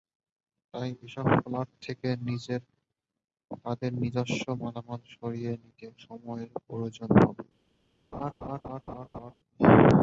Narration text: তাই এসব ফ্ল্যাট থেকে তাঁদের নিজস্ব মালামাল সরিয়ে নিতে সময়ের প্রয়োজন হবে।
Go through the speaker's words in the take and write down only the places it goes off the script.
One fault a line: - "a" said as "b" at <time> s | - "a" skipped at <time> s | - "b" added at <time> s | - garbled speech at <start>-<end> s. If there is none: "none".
none